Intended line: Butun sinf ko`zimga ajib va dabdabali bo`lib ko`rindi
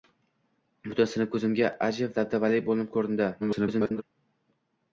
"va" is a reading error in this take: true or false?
true